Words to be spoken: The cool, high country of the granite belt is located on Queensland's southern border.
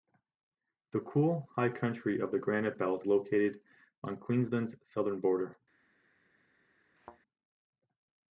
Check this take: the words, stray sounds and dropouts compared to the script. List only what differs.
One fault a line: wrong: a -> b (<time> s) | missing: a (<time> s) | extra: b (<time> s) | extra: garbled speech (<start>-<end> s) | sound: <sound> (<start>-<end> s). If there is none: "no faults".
missing: is (3.0 s)
sound: thud (7.0-7.2 s)